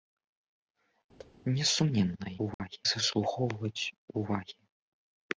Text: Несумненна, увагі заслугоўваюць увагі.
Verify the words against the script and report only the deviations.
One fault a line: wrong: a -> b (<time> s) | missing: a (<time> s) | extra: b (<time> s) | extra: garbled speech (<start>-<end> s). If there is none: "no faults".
no faults